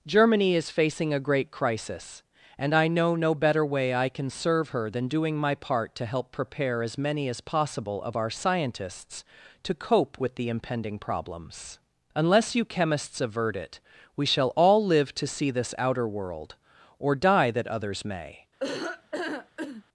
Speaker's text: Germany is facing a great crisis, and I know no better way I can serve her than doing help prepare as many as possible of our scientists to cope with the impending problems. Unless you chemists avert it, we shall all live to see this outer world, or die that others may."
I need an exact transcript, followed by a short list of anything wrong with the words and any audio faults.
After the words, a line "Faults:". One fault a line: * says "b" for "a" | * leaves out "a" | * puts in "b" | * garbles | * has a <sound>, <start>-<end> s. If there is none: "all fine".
Germany is facing a great crisis, and I know no better way I can serve her than doing my part to help prepare as many as possible of our scientists to cope with the impending problems. Unless you chemists avert it, we shall all live to see this outer world, or die that others may."
Faults:
* puts in "my part to"
* has a laugh, 18.6-19.8 s